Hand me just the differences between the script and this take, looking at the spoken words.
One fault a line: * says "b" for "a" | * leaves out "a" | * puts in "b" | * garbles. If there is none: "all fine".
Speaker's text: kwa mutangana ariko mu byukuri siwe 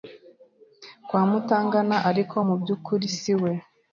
all fine